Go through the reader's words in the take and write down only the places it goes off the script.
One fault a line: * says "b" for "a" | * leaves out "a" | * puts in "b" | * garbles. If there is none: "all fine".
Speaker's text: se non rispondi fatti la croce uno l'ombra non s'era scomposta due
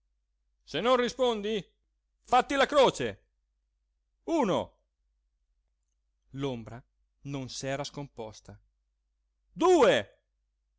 all fine